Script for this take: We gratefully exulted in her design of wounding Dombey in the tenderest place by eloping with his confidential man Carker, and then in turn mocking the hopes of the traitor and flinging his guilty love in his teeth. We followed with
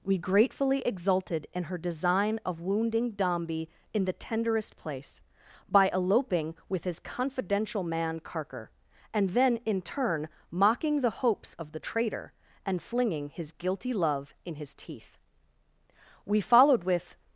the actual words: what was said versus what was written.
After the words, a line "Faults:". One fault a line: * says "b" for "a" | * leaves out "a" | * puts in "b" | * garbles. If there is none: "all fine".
We gratefully exulted in her design of wounding Dombey in the tenderest place by eloping with his confidential man Carker, and then in turn mocking the hopes of the traitor and flinging his guilty love in his teeth. We followed with
Faults:
all fine